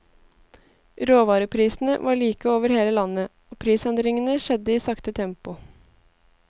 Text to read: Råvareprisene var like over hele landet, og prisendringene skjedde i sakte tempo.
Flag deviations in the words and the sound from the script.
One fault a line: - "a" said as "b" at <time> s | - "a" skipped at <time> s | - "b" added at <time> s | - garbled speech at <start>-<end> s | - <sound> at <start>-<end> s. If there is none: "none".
none